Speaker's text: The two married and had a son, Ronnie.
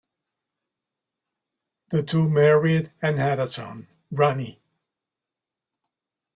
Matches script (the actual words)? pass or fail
pass